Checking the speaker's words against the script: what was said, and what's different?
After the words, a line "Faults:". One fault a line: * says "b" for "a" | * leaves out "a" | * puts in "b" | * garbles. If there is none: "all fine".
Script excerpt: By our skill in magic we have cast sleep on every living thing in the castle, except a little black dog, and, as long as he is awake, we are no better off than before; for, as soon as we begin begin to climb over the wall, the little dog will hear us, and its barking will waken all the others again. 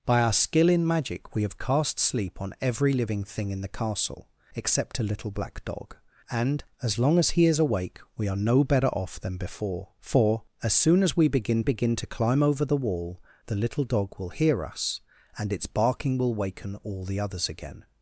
By our skill in magic we have cast sleep on every living thing in the castle, except a little black dog, and, as long as he is awake, we are no better off than before; for, as soon as we begin begin to climb over the wall, the little dog will hear us, and its barking will waken all the others again.
Faults:
all fine